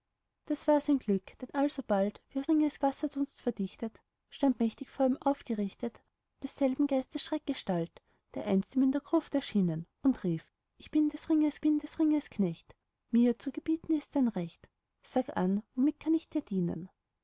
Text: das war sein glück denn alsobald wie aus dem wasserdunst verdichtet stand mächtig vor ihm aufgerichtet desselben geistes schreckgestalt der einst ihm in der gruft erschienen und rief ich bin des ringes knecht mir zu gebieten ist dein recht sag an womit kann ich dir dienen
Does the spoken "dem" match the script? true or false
false